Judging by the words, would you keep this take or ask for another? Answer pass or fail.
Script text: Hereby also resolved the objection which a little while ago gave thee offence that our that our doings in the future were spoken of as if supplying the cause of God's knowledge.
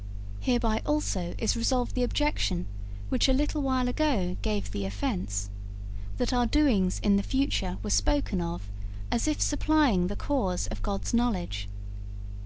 fail